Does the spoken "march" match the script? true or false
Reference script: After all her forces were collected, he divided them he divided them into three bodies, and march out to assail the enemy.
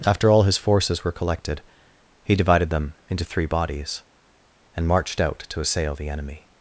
false